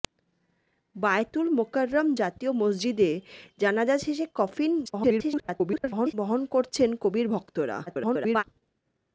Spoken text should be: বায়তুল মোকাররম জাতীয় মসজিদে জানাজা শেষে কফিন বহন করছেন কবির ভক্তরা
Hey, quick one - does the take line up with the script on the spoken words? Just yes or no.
no